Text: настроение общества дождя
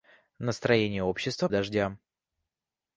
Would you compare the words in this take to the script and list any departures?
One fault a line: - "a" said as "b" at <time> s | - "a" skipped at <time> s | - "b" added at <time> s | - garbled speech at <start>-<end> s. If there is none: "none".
none